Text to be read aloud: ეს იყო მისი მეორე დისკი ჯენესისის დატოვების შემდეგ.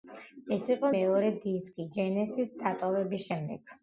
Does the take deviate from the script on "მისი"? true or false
true